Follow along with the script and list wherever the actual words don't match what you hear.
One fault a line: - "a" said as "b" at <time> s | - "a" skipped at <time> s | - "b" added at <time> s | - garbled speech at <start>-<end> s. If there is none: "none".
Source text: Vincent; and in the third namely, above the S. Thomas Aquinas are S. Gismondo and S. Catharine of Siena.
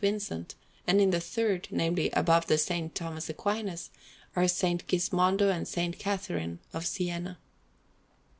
none